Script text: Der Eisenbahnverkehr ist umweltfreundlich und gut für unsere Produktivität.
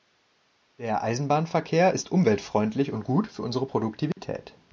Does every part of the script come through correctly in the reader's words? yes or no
yes